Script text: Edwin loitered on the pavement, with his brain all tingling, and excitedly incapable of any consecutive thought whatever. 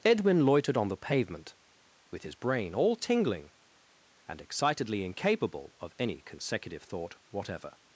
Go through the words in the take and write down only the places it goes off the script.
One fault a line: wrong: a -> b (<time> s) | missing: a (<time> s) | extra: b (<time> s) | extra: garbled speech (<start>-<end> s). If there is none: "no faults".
no faults